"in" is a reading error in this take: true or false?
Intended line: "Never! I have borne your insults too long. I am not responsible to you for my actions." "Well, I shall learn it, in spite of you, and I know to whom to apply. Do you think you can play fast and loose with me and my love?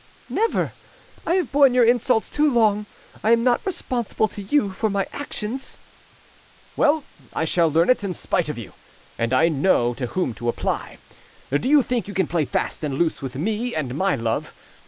false